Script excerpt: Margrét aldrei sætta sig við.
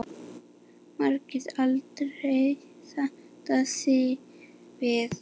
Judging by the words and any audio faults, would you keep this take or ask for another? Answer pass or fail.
pass